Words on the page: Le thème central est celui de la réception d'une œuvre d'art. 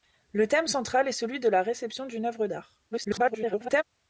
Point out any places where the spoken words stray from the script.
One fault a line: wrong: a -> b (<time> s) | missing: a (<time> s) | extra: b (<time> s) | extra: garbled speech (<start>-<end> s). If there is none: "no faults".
extra: garbled speech (2.9-3.8 s)